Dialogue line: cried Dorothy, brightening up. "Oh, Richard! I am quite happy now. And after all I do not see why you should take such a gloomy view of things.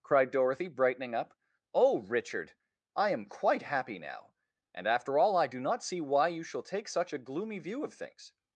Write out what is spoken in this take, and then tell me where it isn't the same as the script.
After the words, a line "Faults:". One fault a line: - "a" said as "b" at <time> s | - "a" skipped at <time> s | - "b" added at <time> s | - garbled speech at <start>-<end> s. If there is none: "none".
cried Dorothy, brightening up. "Oh, Richard! I am quite happy now. And after all I do not see why you shall take such a gloomy view of things.
Faults:
- "should" said as "shall" at 6.4 s